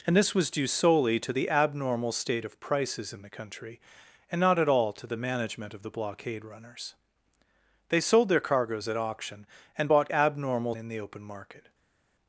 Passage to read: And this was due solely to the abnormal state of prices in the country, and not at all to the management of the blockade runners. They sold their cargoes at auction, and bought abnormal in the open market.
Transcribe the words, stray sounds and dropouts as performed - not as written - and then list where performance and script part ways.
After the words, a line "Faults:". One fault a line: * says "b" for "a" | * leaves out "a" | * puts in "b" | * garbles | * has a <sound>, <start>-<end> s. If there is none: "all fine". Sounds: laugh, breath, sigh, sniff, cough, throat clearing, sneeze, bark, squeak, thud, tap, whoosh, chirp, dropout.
And this was due solely to the abnormal state of prices in the country, and not at all to the management of the blockade runners. They sold their cargoes at auction, and bought abnormal in the open market.
Faults:
all fine